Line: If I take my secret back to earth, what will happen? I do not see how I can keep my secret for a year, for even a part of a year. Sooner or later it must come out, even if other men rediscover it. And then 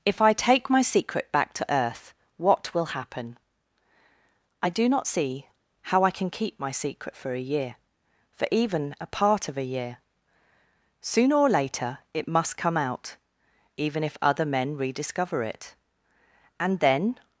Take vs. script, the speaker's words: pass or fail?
pass